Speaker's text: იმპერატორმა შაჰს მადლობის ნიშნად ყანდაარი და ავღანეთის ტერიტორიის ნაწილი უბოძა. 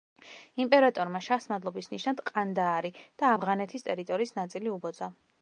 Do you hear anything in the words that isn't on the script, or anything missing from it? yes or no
no